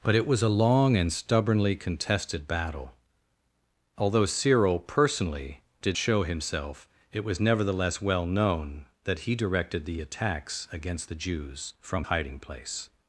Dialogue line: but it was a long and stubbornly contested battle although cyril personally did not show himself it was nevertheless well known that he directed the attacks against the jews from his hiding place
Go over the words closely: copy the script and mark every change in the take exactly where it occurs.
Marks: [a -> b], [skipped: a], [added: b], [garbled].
but it was a long and stubbornly contested battle although cyril personally did [skipped: not] show himself it was nevertheless well known that he directed the attacks against the jews from [skipped: his] hiding place